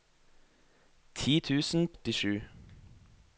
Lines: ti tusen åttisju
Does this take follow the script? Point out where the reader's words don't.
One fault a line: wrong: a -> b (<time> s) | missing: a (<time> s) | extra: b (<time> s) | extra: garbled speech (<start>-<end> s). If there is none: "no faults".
no faults